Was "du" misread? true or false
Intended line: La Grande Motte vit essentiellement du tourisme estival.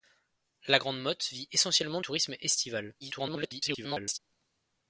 true